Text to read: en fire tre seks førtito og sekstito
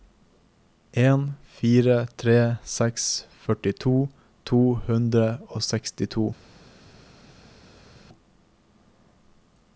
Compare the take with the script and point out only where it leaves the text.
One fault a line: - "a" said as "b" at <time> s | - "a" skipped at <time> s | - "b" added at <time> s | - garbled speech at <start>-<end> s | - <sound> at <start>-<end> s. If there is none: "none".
- "to hundre" added at 4.5 s